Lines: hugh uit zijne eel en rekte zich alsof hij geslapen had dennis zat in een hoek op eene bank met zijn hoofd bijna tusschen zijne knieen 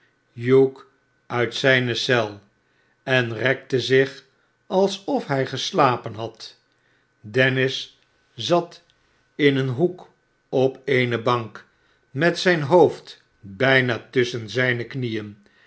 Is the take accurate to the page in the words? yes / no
yes